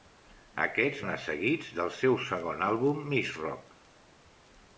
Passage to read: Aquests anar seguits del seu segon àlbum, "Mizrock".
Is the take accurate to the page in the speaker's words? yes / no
yes